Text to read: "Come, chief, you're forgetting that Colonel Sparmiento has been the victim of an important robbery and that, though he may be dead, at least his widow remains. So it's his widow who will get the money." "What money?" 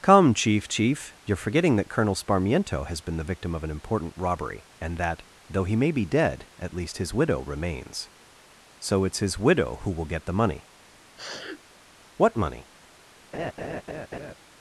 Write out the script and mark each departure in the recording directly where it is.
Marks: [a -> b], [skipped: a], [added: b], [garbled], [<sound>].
"Come, chief, [added: chief] you're forgetting that Colonel Sparmiento has been the victim of an important robbery and that, though he may be dead, at least his widow remains. So it's his widow who will get the money." [sniff] "What money?" [laugh]